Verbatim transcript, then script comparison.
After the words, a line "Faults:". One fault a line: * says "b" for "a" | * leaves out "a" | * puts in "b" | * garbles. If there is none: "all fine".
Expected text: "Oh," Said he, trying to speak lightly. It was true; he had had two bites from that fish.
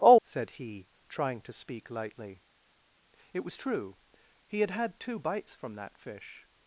"Oh," Said he, trying to speak lightly. It was true; he had had two bites from that fish.
Faults:
all fine